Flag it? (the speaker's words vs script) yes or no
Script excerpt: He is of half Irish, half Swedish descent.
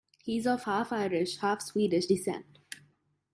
no